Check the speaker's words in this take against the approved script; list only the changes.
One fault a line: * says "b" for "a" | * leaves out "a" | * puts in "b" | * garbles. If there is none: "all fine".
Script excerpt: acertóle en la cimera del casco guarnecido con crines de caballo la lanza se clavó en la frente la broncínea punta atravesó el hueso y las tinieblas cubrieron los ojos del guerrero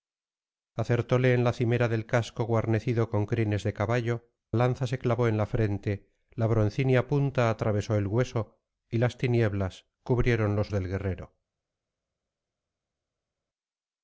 * leaves out "la"
* leaves out "ojos"